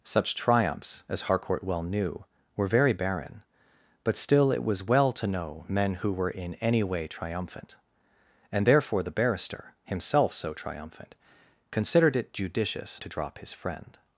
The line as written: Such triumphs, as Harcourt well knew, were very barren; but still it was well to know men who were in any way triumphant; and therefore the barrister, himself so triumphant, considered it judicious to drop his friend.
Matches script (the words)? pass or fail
pass